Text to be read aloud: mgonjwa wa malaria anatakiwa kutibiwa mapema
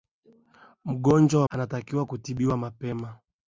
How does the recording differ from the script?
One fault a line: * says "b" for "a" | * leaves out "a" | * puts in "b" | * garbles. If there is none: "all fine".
* leaves out "malaria"